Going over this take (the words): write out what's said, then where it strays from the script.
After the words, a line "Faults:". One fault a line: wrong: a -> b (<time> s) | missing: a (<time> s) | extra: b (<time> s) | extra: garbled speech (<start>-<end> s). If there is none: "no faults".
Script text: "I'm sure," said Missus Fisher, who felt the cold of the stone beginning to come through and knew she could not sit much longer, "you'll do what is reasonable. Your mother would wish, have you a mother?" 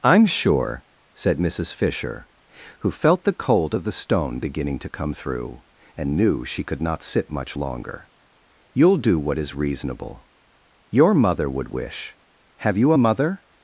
"I'm sure," said Missus Fisher, who felt the cold of the stone beginning to come through and knew she could not sit much longer, "you'll do what is reasonable. Your mother would wish, have you a mother?"
Faults:
no faults